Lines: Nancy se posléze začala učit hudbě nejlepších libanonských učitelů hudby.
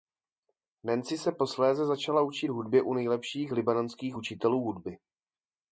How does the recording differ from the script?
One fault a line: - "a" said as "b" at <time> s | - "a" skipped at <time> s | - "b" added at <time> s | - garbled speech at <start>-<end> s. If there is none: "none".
- "u" added at 2.8 s